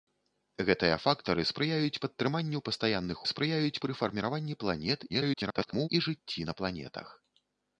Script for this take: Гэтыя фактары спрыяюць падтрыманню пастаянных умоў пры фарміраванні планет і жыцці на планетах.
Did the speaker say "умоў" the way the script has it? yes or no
no